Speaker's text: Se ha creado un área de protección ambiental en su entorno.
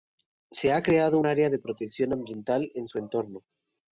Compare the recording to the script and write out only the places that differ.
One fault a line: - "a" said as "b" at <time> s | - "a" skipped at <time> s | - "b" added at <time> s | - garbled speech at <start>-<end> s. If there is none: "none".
none